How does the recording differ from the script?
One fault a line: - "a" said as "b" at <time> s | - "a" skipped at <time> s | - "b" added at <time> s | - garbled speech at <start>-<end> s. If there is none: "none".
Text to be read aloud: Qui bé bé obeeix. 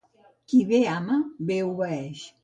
- "ama" added at 0.9 s